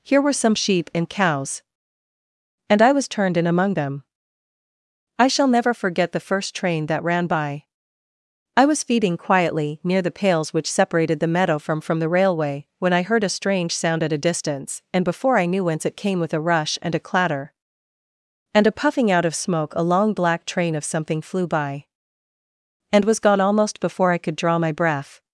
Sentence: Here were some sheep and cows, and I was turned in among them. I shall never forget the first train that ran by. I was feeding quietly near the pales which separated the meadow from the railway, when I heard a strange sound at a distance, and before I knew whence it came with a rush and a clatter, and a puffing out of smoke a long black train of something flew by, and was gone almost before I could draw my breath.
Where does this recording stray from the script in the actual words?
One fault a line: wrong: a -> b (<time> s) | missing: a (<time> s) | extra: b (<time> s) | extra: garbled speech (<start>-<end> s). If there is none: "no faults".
extra: from (11.8 s)